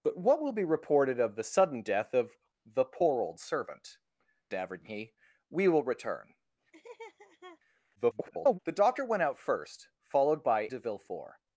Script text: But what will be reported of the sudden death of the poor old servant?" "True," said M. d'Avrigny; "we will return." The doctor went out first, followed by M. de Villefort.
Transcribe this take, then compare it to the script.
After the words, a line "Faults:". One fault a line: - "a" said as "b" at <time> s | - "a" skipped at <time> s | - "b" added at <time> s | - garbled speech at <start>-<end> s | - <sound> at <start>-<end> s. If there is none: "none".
But what will be reported of the sudden death of the poor old servant. "D'Avrigny; "we will return." [garbled] The doctor went out first, followed by. De Villefort.
Faults:
- "True said M" skipped at 4.0 s
- laugh at 6.7-7.6 s
- garbled speech at 8.0-8.6 s
- "M" skipped at 10.7 s